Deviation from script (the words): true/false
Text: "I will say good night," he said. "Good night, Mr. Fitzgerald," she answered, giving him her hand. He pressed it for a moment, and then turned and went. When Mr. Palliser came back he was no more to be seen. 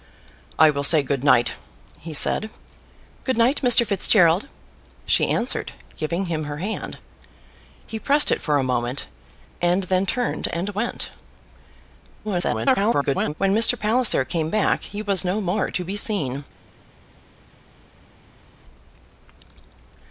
true